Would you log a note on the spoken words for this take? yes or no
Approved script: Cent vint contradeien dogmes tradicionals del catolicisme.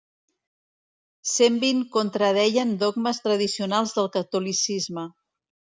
no